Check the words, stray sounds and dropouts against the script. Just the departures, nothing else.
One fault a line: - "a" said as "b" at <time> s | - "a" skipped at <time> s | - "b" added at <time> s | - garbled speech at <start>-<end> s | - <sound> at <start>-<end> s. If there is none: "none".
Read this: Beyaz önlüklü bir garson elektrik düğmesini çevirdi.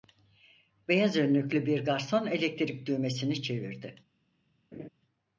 - laugh at 4.7-4.9 s